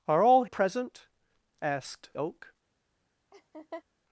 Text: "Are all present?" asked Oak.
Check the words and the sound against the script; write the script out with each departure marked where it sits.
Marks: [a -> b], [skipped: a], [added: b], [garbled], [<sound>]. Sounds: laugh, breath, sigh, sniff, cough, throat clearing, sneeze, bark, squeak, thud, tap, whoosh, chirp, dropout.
"Are all present?" asked Oak. [laugh]